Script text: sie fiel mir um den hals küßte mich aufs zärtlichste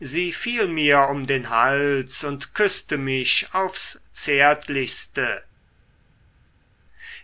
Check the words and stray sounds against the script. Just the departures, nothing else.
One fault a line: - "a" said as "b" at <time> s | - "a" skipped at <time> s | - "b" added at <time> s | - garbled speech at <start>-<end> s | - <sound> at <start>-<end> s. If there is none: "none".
- "und" added at 2.2 s